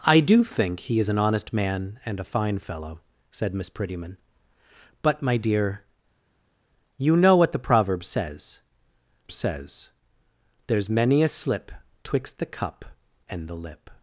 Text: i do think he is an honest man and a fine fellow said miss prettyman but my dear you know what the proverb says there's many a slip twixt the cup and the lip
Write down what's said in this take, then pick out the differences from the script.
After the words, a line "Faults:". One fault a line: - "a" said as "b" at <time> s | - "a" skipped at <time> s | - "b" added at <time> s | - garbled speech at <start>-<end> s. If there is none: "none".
i do think he is an honest man and a fine fellow said miss prettyman but my dear you know what the proverb says says there's many a slip twixt the cup and the lip
Faults:
- "says" added at 9.3 s